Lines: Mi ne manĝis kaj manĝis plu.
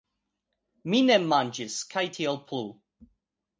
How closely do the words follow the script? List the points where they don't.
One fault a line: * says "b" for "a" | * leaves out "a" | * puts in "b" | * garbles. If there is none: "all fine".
* says "tiel" for "manĝis"